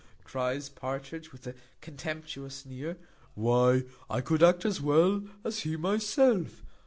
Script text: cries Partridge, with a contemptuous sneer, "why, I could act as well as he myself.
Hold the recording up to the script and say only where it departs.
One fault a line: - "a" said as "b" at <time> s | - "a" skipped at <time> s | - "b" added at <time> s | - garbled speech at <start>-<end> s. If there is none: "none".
none